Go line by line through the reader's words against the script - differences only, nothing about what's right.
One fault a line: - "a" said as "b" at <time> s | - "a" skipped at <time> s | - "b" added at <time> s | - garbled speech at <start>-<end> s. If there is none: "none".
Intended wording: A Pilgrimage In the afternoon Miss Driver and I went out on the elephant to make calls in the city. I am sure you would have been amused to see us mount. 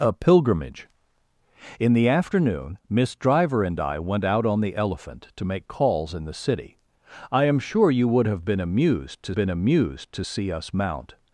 - "been amused to" added at 9.3 s